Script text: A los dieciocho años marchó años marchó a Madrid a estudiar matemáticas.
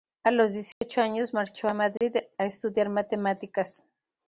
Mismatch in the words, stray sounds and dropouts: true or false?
true